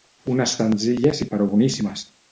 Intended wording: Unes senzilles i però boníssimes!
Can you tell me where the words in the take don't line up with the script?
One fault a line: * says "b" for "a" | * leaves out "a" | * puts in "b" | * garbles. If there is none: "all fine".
all fine